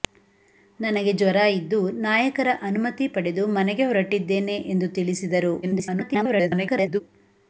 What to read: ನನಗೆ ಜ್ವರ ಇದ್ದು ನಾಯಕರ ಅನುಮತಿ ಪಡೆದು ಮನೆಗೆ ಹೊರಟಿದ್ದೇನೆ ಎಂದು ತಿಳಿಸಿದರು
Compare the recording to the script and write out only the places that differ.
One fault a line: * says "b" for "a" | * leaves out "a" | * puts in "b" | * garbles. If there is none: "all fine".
* garbles